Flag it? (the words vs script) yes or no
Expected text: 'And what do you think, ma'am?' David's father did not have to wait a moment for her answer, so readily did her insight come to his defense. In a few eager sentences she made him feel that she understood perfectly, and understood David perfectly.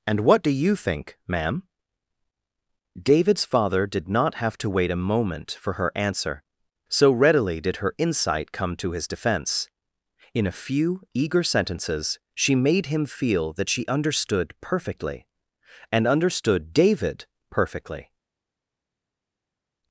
no